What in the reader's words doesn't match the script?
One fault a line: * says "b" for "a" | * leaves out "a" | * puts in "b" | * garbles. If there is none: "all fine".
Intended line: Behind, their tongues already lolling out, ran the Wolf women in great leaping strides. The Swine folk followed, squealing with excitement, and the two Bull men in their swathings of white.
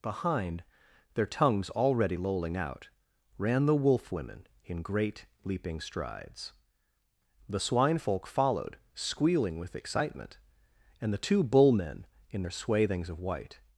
all fine